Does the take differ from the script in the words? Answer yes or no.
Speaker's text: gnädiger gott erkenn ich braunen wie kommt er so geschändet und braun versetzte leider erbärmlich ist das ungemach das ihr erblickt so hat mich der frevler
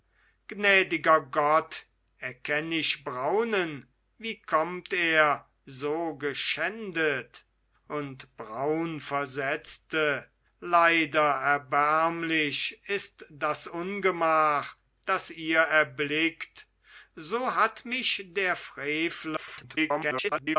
yes